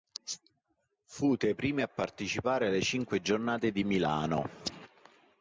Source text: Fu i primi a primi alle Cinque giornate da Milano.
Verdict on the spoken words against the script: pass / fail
fail